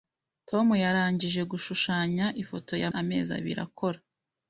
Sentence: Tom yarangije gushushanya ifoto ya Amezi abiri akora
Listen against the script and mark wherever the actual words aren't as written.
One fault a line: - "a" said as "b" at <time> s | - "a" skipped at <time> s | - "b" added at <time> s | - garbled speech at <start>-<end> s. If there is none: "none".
none